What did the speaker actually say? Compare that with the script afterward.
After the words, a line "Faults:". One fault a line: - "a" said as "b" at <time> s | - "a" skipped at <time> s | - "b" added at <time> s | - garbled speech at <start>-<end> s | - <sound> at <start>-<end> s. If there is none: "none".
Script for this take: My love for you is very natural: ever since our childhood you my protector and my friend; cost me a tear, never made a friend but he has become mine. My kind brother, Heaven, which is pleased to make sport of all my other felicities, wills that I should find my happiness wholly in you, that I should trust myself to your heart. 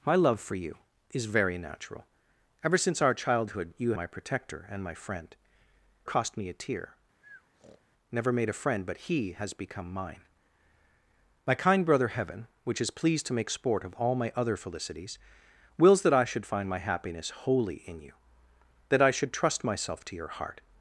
My love for you is very natural: ever since our childhood you my protector and my friend; cost me a tear, never made a friend but he has become mine. My kind brother, Heaven, which is pleased to make sport of all my other felicities, wills that I should find my happiness wholly in you, that I should trust myself to your heart.
Faults:
- breath at 7.2-7.8 s